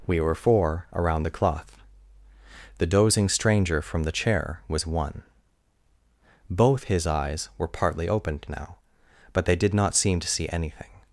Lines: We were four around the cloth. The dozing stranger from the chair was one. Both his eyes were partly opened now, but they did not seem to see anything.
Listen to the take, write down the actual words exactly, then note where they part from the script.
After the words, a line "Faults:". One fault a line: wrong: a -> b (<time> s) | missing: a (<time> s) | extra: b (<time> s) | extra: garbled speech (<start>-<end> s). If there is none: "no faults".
We were four around the cloth. The dozing stranger from the chair was one. Both his eyes were partly opened now, but they did not seem to see anything.
Faults:
no faults